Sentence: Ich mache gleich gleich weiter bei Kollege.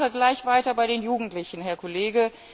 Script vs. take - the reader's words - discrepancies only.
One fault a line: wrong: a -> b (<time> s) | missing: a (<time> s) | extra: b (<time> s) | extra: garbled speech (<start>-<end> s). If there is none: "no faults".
missing: gleich (0.5 s)
extra: den Jugendlichen Herr (0.9 s)